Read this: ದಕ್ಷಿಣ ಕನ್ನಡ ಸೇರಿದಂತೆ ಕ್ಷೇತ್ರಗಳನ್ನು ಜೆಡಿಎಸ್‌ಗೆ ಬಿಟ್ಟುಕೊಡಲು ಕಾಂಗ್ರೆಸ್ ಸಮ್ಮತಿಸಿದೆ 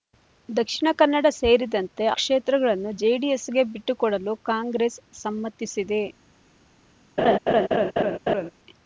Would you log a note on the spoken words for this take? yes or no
no